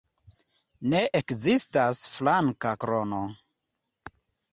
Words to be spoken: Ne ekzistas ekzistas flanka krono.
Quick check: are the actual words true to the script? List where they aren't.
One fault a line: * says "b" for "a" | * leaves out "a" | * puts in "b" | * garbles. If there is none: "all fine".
* leaves out "ekzistas"